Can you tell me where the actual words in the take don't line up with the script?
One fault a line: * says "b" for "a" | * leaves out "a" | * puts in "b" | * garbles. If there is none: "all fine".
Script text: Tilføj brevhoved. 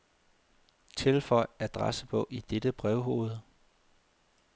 * puts in "adressebog i dette"